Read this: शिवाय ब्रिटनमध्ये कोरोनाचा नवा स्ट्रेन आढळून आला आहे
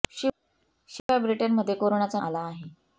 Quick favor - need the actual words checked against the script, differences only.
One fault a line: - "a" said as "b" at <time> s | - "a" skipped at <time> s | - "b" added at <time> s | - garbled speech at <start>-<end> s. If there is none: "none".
- "नवा स्ट्रेन आढळून" skipped at 2.2 s